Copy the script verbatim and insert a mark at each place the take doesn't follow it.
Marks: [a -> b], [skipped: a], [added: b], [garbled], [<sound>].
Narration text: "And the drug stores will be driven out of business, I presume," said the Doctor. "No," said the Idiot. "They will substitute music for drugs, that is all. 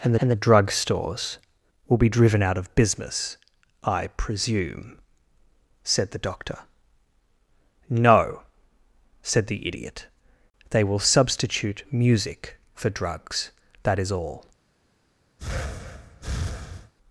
"And [added: and] the drug stores will be driven out of business, I presume," said the Doctor. "No," said the Idiot. "They will substitute music for drugs, that is all. [breath]